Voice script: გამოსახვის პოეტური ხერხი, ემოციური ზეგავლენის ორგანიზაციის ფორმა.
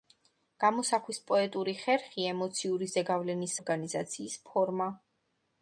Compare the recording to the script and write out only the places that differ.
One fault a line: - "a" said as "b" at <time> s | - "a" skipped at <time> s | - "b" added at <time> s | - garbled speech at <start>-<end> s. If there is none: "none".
none